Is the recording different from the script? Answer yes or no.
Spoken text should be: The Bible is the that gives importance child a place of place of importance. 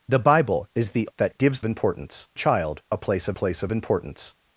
no